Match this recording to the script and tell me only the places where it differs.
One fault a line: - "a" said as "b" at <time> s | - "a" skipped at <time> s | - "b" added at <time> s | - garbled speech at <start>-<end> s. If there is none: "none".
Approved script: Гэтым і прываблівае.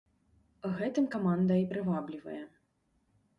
- "каманда" added at 1.2 s